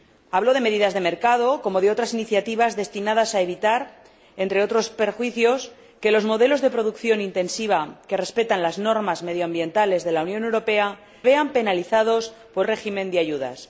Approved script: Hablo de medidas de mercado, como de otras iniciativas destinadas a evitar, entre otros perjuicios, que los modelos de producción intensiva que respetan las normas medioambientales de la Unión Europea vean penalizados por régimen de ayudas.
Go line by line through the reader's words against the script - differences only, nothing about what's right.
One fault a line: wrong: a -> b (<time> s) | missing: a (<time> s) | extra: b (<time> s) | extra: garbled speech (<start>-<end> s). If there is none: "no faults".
no faults